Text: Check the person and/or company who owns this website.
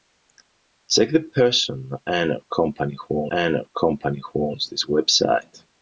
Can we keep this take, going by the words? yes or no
no